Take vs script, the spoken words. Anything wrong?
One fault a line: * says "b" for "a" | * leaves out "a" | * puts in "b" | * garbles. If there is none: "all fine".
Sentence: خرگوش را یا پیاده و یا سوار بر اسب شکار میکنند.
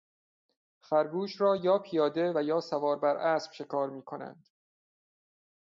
all fine